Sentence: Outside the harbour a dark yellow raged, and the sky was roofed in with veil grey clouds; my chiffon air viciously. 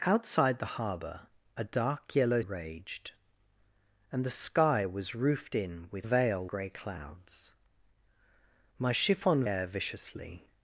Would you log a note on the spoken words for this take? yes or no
no